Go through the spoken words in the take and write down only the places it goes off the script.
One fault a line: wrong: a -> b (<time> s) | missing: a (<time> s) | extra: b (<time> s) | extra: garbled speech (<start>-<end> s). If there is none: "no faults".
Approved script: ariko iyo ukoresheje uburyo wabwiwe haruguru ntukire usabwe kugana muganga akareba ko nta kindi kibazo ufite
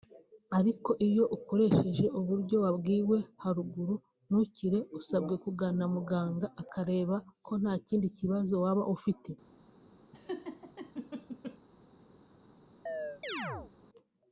extra: waba (8.6 s)